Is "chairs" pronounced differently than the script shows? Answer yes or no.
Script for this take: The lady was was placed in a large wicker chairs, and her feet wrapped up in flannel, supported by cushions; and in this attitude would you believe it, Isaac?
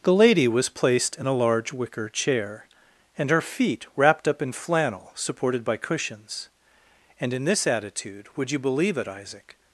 yes